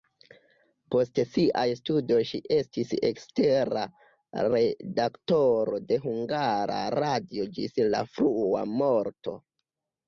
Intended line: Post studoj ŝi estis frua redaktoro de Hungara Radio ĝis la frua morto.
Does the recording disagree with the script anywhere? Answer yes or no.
yes